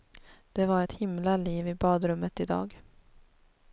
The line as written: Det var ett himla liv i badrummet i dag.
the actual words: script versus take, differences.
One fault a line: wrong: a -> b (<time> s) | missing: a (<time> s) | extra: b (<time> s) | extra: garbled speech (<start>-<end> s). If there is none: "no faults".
no faults